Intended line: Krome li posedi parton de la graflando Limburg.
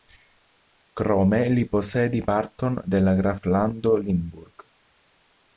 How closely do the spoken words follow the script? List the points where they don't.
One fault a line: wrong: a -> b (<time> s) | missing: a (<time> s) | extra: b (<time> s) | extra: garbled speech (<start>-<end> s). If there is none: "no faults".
no faults